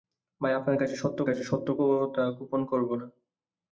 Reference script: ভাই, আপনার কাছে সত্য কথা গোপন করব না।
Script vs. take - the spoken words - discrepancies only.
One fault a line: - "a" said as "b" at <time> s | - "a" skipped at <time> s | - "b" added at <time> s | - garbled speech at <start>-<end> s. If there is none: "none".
- "কাছে সত্য" added at 1.2 s